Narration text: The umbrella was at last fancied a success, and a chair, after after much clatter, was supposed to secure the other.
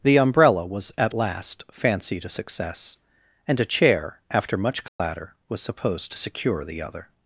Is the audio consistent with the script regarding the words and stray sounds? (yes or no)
no